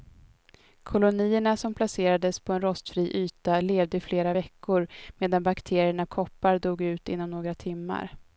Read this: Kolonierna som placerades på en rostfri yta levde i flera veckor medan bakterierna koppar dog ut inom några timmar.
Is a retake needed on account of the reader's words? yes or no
no